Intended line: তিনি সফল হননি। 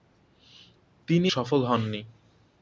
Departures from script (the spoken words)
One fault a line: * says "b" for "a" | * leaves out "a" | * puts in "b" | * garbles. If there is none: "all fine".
all fine